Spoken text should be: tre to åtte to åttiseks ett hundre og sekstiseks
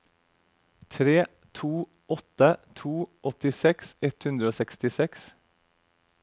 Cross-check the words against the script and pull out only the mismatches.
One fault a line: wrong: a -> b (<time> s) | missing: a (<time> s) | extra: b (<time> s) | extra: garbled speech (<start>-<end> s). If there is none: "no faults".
no faults